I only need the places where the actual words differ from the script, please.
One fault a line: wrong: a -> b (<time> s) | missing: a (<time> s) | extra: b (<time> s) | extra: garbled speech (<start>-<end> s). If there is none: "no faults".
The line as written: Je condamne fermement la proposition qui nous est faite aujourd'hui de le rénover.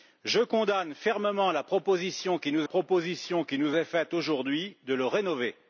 extra: proposition qui nous (2.6 s)